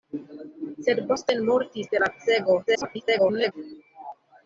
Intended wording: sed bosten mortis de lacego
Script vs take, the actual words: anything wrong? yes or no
yes